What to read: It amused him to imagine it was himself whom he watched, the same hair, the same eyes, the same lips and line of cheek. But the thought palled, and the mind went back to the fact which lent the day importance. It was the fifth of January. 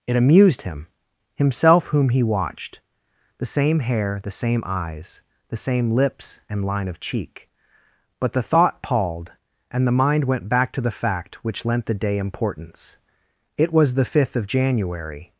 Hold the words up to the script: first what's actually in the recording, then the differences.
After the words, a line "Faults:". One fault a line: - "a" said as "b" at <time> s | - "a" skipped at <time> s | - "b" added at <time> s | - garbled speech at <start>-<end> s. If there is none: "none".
It amused him himself whom he watched, the same hair, the same eyes, the same lips and line of cheek. But the thought palled, and the mind went back to the fact which lent the day importance. It was the fifth of January.
Faults:
- "to imagine it was" skipped at 0.9 s